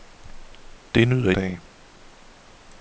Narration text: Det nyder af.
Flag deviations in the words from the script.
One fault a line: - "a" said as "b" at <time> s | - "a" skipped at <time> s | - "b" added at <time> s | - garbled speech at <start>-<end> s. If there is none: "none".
none